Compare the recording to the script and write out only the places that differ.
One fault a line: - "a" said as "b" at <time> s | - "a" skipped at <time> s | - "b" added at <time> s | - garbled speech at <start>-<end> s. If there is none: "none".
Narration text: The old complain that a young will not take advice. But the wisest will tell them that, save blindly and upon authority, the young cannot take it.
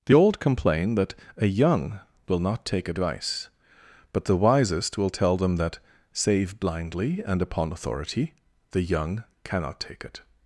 none